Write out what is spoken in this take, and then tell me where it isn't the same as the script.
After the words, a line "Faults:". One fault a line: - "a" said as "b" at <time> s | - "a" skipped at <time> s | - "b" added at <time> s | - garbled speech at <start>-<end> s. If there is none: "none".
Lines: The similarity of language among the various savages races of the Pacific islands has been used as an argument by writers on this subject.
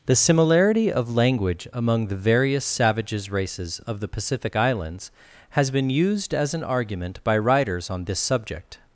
The similarity of language among the various savages races of the Pacific islands has been used as an argument by writers on this subject.
Faults:
none